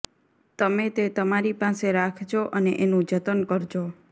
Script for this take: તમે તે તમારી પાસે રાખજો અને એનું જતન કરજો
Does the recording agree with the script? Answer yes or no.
yes